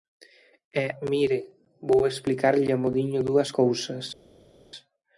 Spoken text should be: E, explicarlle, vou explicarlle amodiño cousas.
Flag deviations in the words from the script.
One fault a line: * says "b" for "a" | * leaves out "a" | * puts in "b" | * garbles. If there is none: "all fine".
* says "mire" for "explicarlle"
* puts in "dúas"